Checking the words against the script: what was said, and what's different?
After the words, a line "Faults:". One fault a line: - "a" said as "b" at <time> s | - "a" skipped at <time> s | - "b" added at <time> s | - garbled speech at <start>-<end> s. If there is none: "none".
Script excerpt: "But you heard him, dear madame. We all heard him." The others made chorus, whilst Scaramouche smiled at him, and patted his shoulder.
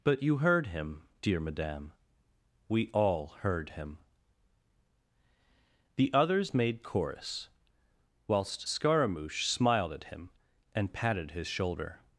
"But you heard him, dear madame. We all heard him." The others made chorus, whilst Scaramouche smiled at him, and patted his shoulder.
Faults:
none